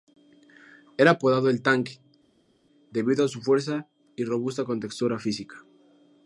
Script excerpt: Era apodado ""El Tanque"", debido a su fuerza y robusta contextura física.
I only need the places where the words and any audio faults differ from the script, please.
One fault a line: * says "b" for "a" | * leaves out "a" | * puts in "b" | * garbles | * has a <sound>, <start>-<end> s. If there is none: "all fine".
all fine